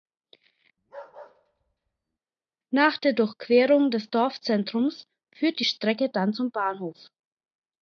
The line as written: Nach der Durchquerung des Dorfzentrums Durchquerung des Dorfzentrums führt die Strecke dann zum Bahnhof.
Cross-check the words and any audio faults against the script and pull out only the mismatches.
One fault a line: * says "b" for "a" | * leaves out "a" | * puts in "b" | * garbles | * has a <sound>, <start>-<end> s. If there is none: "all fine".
* has a bark, 0.8-2.2 s
* leaves out "Durchquerung des Dorfzentrums"